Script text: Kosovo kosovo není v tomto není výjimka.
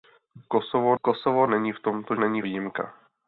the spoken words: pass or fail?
pass